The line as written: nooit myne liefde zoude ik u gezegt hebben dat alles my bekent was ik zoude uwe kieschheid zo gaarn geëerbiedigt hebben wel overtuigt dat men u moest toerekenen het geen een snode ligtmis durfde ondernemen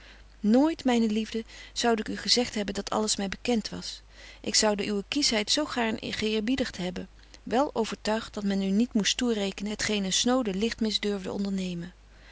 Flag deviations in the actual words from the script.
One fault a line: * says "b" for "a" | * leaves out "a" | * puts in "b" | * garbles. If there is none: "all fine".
* puts in "niet"